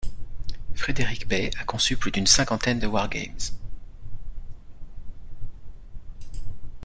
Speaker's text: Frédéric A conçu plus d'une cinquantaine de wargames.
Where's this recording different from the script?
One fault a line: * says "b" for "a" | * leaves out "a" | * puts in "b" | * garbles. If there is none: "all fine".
* puts in "Bey"